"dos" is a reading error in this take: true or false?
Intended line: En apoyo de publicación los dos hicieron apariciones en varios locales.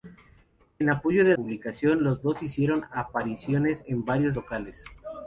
false